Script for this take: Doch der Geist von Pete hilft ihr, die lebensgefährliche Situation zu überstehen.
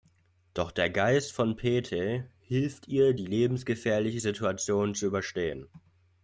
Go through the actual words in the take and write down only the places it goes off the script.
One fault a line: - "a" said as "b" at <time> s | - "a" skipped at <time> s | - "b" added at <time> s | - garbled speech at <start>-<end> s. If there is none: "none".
none